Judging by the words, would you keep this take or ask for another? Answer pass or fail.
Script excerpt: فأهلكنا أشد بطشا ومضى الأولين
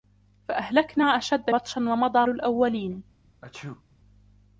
pass